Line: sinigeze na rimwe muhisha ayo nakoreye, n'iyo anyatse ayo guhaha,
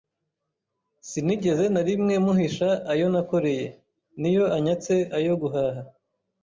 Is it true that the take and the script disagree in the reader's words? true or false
false